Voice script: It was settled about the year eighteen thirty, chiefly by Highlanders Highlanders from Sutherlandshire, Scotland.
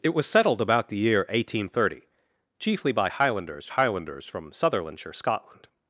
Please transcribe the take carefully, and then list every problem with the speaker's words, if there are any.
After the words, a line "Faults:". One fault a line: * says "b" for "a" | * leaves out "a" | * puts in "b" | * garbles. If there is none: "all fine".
It was settled about the year eighteen thirty, chiefly by Highlanders Highlanders from Sutherlandshire, Scotland.
Faults:
all fine